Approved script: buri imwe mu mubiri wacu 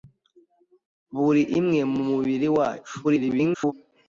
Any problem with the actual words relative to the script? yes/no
yes